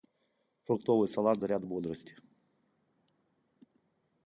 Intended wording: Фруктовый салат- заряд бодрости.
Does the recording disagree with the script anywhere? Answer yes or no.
no